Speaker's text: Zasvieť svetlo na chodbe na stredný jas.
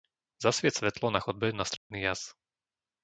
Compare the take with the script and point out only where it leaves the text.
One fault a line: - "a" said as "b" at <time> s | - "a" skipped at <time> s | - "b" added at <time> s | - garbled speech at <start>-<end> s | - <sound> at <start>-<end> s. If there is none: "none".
- dropout at 1.8-1.9 s